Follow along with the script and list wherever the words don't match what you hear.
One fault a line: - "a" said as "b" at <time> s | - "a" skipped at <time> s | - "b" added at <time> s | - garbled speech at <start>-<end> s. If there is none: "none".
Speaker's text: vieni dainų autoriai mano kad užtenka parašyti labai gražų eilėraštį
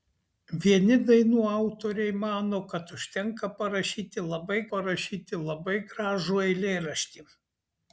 - "parašyti labai" added at 4.7 s